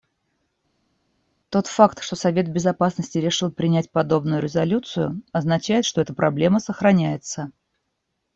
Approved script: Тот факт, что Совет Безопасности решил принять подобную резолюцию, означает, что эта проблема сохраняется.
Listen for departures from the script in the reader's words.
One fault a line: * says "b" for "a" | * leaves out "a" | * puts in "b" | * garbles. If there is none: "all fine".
all fine